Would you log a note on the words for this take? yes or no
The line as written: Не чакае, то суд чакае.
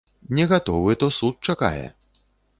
yes